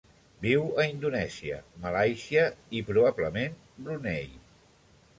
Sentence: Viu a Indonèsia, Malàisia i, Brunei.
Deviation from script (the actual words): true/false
true